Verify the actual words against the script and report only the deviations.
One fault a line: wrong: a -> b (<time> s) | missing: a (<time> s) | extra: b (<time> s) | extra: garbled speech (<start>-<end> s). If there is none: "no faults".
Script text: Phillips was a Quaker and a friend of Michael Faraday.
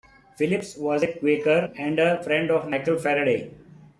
no faults